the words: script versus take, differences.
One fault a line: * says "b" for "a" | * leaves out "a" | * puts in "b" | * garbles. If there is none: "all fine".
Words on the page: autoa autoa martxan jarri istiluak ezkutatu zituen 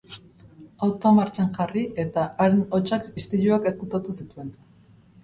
* leaves out "autoa"
* puts in "eta haren hotsak"